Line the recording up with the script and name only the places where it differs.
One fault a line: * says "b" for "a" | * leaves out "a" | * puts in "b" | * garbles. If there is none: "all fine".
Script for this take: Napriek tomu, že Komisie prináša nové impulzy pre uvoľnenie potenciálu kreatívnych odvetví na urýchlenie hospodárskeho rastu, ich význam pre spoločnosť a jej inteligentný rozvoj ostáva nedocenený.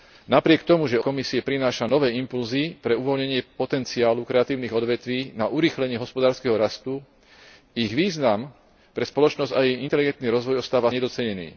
all fine